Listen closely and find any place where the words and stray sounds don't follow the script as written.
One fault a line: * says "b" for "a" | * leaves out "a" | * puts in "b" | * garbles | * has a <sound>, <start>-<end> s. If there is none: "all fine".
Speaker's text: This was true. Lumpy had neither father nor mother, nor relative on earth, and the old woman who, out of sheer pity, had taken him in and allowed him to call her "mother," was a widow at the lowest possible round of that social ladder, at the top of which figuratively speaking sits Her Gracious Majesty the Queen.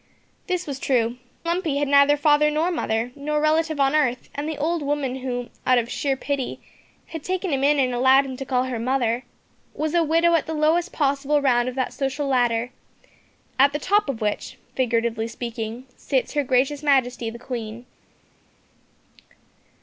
all fine